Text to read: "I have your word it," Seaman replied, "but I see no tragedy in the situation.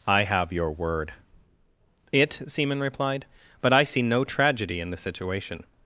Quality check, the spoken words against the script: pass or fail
pass